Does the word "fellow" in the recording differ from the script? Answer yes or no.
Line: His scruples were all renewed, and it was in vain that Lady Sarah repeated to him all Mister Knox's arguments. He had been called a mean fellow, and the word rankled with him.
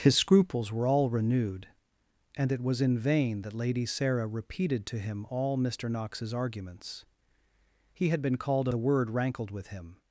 yes